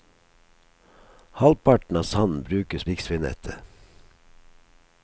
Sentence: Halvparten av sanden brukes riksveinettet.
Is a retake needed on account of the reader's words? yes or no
no